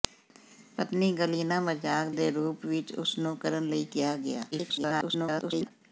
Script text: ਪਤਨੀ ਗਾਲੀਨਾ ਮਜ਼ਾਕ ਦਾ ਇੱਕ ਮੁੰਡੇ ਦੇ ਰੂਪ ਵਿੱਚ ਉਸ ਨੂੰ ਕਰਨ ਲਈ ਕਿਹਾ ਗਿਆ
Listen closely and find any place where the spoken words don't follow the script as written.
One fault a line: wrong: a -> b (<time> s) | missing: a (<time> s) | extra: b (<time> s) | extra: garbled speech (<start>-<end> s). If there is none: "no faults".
missing: ਦਾ ਇੱਕ ਮੁੰਡੇ (2.1 s)
extra: garbled speech (4.5-5.7 s)